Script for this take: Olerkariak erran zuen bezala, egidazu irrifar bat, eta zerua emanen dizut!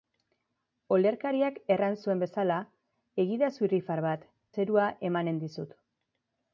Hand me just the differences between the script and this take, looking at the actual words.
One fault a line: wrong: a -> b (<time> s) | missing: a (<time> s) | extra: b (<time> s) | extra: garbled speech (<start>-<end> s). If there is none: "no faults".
missing: eta (4.2 s)